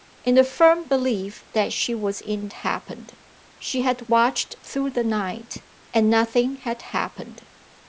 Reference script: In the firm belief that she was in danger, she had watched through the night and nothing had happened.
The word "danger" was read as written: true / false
false